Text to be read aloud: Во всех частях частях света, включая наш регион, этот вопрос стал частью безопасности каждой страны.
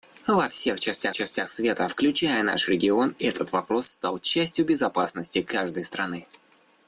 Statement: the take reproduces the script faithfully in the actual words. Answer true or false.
true